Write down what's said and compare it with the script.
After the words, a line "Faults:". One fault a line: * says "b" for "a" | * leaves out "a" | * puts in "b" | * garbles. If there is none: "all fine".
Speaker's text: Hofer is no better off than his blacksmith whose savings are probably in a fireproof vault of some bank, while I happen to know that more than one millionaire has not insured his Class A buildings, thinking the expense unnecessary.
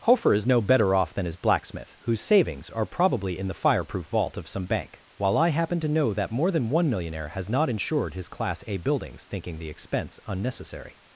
Hofer is no better off than his blacksmith whose savings are probably in the fireproof vault of some bank, while I happen to know that more than one millionaire has not insured his Class A buildings, thinking the expense unnecessary.
Faults:
* says "the" for "a"